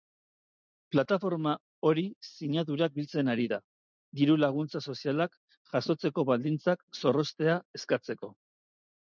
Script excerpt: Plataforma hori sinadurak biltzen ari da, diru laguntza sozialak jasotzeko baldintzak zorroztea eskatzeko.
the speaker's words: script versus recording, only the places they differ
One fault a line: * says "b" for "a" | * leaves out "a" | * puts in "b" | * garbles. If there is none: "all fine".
all fine